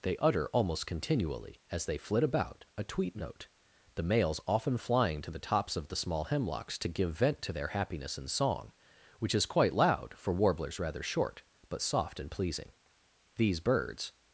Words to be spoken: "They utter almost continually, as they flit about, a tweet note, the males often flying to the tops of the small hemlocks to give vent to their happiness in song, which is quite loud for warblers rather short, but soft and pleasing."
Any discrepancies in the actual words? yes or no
yes